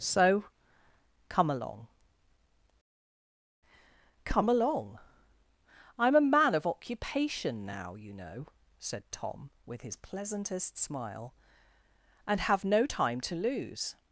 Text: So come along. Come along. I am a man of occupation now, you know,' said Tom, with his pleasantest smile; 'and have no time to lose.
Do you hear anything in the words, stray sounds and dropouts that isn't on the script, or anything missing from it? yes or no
no